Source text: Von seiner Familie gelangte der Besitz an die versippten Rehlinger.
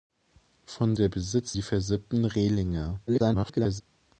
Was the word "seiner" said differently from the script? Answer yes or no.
yes